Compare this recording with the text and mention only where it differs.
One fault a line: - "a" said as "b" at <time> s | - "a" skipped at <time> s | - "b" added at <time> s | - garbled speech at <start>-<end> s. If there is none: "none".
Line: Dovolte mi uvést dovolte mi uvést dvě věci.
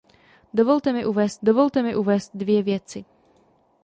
none